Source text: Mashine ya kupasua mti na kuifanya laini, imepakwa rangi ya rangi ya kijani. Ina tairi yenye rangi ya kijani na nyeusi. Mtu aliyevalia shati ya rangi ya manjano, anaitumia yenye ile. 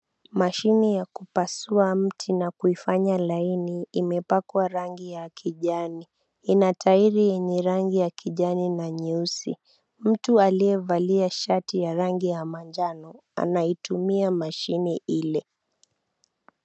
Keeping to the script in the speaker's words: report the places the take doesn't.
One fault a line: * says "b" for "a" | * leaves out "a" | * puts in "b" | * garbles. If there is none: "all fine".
* leaves out "rangi ya"
* says "mashine" for "yenye"